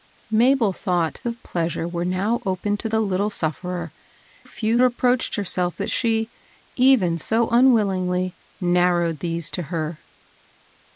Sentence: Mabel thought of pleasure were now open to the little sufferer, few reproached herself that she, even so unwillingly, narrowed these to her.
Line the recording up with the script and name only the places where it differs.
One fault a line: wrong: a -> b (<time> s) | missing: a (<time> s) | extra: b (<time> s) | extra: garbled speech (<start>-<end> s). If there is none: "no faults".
no faults